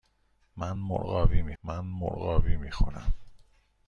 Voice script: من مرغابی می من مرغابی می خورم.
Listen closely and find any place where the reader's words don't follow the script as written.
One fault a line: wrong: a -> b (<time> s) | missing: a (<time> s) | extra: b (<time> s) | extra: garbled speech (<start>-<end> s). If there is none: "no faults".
no faults